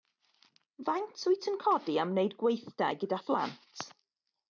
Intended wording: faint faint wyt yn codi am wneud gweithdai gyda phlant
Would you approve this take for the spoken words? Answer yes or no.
no